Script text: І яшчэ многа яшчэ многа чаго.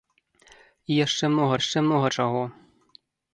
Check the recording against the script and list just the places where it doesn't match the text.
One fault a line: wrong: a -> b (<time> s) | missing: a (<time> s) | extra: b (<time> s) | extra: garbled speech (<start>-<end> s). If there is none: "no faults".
no faults